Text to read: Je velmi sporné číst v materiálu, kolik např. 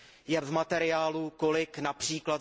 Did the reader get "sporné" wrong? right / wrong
wrong